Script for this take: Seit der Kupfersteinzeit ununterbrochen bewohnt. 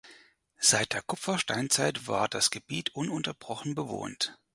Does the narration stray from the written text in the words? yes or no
yes